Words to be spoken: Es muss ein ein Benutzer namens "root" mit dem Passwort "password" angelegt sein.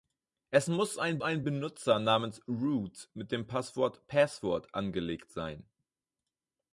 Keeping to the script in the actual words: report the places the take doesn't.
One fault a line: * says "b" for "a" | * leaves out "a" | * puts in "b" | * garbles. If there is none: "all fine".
all fine